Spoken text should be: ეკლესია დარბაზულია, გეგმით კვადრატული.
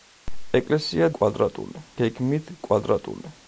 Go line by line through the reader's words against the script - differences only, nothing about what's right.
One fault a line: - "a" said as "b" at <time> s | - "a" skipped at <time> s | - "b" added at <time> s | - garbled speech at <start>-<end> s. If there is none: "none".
- "დარბაზულია" said as "კვადრატული" at 1.2 s